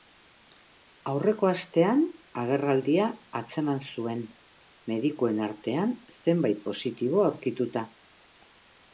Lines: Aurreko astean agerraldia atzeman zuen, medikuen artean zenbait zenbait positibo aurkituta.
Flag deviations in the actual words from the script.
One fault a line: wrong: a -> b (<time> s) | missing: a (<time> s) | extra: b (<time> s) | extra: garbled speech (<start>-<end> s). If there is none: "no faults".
missing: zenbait (6.6 s)